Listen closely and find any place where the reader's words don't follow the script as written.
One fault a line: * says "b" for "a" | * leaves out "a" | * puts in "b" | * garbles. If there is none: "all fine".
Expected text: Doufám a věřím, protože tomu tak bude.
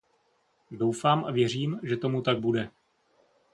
* says "že" for "protože"